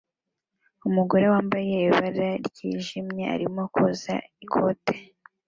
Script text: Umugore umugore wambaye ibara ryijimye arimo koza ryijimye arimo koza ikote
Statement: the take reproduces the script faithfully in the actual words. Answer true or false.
false